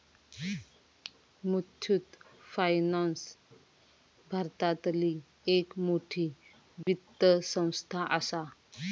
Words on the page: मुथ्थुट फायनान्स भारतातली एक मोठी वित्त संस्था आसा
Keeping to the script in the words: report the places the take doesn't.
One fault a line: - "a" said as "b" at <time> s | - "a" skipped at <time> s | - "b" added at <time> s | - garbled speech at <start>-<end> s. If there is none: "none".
none